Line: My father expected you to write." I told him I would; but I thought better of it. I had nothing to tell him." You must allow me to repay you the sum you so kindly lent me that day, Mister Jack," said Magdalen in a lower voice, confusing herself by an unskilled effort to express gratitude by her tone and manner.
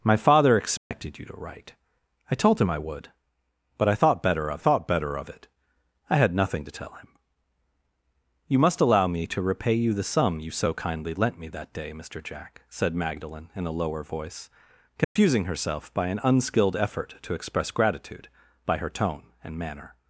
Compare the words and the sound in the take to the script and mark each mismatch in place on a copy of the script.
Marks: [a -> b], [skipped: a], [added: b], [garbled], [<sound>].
My father expected [dropout] you to write." I told him I would; but I thought better of [added: thought better of] it. I had nothing to tell him." You must allow me to repay you the sum you so kindly lent me that day, Mister Jack," said Magdalen in a lower voice, confusing [dropout] herself by an unskilled effort to express gratitude by her tone and manner.